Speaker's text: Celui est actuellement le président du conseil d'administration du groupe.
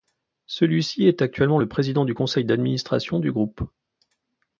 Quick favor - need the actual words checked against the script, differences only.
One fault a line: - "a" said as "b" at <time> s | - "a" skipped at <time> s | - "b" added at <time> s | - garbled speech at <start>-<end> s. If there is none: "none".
- "ci" added at 0.8 s